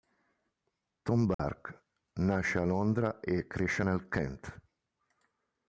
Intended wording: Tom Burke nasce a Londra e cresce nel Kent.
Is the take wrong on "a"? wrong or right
right